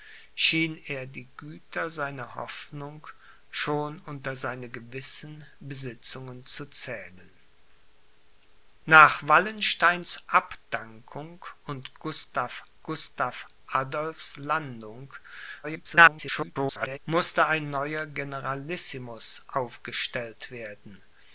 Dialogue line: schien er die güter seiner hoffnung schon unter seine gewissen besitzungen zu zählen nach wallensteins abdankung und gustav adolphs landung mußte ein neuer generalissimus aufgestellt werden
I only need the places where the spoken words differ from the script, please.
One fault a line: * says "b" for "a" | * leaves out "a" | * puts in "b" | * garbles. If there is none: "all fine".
* puts in "gustav"
* garbles